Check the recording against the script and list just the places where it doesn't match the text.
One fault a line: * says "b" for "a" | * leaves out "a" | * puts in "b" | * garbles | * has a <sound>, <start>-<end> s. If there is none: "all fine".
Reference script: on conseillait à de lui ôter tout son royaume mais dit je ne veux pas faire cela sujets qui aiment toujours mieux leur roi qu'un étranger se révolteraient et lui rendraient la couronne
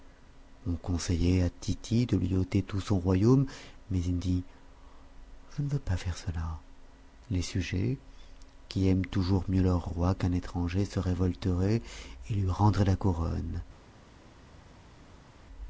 * puts in "tity"
* puts in "il"
* puts in "les"